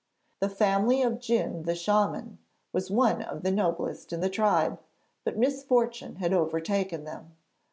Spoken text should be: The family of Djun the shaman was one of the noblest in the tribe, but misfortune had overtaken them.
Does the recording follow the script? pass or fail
pass